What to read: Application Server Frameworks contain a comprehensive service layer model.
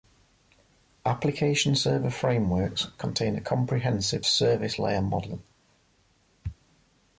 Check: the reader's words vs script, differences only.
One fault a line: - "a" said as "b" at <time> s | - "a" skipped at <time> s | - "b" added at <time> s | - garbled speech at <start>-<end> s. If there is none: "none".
none